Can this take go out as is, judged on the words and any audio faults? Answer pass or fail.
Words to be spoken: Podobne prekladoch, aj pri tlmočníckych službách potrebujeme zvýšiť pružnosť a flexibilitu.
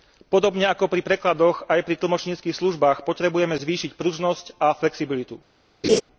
fail